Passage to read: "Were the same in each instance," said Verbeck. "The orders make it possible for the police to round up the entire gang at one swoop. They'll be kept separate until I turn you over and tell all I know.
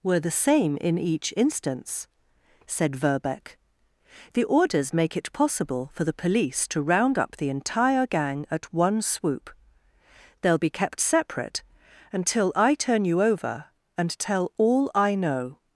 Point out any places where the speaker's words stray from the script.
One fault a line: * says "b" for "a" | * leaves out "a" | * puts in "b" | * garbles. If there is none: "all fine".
all fine